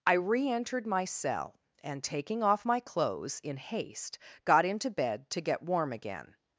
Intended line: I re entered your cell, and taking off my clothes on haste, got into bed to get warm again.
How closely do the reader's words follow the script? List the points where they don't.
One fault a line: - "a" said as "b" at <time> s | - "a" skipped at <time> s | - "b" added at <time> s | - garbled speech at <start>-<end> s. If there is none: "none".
- "your" said as "my" at 0.9 s
- "on" said as "in" at 3.4 s